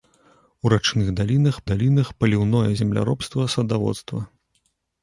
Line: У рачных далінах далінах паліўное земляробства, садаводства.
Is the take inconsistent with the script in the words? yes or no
no